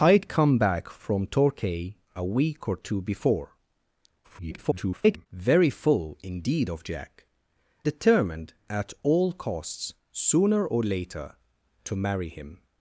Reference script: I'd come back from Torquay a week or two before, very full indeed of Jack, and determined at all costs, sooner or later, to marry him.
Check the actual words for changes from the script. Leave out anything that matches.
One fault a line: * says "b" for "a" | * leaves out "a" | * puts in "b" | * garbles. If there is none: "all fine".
* garbles
* leaves out "and"